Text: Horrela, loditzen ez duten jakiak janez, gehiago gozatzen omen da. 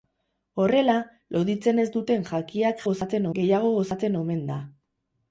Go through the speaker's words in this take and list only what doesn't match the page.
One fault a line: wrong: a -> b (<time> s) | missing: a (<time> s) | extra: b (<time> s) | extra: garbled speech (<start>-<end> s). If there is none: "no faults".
wrong: janez -> gozatzen (2.9 s)